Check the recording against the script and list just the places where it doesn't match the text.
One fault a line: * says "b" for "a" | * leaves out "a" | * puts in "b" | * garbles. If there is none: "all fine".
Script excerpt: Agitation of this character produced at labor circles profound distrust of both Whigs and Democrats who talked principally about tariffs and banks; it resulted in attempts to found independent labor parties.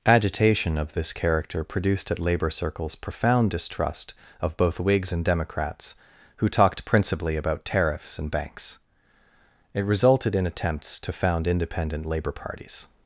all fine